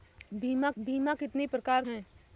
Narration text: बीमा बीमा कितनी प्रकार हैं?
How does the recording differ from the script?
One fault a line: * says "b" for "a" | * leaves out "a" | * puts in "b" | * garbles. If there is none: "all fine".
all fine